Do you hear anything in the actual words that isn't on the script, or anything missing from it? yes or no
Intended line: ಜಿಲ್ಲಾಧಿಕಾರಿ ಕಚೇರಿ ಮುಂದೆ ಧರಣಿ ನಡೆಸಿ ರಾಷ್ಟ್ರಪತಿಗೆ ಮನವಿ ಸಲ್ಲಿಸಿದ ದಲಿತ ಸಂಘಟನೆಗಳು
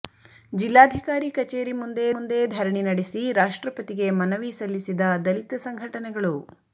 yes